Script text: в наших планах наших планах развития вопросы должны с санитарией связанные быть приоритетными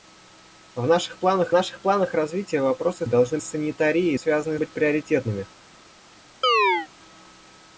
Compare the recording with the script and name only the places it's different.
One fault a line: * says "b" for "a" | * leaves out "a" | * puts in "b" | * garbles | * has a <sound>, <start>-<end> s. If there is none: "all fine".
* has a chirp, 6.4-6.9 s